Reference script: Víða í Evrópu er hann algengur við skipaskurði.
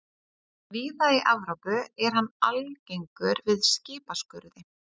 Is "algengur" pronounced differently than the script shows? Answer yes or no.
no